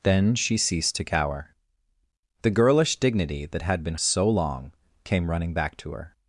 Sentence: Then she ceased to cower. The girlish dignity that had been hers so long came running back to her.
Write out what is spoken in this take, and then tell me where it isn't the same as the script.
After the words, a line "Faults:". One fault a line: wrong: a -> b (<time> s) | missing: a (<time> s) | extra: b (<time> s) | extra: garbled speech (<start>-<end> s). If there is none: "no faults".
Then she ceased to cower. The girlish dignity that had been so long came running back to her.
Faults:
missing: hers (4.0 s)